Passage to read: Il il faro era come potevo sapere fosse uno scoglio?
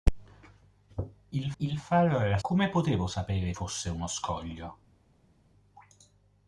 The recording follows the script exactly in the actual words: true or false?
true